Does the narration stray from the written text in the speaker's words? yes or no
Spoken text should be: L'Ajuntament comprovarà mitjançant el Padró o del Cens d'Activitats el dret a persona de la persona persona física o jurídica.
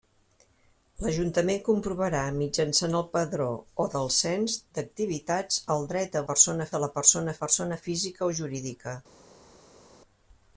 no